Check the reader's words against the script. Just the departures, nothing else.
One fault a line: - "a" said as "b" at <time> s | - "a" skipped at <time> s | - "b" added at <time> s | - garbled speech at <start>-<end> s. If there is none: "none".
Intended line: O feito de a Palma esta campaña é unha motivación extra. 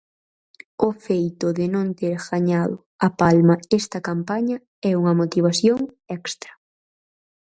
- "non ter gañado" added at 1.8 s